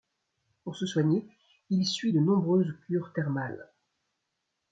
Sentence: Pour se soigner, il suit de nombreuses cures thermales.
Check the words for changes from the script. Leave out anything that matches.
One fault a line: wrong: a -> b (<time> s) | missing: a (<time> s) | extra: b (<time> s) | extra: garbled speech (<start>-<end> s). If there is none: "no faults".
no faults